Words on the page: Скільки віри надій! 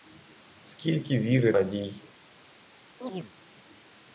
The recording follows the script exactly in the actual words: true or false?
true